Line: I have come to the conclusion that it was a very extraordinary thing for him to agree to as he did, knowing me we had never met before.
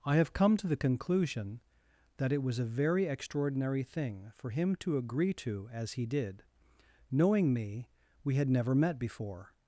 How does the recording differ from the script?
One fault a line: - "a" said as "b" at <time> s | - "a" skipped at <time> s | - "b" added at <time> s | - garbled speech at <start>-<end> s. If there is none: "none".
none